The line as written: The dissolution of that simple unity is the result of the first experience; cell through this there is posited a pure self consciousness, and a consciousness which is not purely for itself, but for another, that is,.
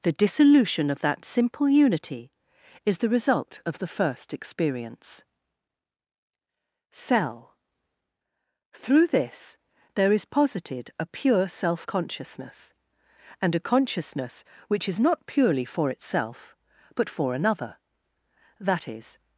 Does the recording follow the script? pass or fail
pass